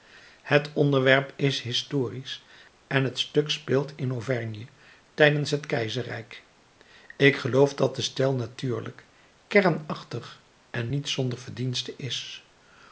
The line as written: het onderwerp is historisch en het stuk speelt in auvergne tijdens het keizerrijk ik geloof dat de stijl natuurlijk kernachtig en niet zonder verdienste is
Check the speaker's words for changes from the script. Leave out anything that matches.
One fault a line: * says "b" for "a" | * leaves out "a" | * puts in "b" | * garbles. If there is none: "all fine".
all fine